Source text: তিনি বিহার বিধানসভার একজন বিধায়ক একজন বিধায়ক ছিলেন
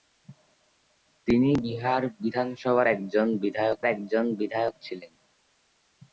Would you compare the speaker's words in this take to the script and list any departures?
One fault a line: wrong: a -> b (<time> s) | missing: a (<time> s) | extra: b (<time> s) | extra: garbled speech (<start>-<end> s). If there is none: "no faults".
no faults